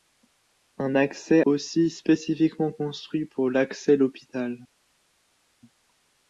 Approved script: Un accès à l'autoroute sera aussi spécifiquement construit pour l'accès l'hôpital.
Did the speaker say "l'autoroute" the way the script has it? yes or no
no